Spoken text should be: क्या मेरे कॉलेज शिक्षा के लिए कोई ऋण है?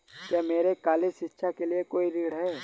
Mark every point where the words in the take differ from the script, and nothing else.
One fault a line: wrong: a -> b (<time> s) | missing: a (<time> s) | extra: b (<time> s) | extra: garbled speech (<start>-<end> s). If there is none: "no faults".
no faults